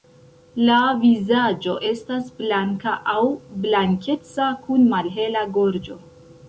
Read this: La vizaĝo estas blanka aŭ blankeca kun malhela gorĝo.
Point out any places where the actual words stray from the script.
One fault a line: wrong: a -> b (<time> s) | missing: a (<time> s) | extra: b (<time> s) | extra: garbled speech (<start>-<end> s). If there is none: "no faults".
no faults